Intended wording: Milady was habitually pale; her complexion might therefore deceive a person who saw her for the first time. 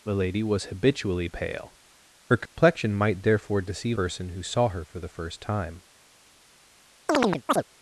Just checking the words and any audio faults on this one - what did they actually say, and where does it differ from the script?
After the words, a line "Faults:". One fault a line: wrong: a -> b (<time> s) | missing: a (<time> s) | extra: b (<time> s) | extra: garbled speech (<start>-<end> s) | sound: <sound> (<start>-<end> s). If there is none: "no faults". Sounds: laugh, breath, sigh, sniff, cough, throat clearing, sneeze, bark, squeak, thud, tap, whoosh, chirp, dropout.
Milady was habitually pale; her complexion might therefore deceive person who saw her for the first time.
Faults:
sound: dropout (2.5-2.6 s)
missing: a (4.0 s)
sound: chirp (7.1-7.6 s)